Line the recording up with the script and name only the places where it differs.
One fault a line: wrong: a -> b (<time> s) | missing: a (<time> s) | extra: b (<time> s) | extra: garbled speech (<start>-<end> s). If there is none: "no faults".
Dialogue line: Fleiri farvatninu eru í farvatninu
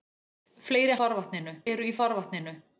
no faults